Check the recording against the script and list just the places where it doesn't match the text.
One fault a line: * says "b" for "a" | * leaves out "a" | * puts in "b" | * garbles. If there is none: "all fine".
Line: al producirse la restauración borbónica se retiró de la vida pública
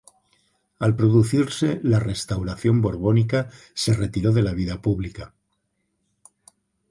all fine